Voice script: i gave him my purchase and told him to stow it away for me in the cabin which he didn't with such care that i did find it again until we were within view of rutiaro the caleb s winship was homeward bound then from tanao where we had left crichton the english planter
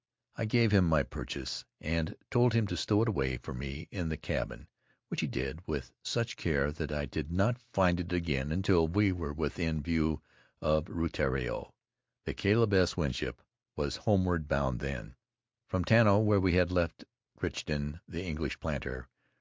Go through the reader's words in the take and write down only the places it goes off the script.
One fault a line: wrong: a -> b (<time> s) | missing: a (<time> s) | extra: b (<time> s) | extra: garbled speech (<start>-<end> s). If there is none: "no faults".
wrong: didn't -> did (5.3 s)
extra: not (7.3 s)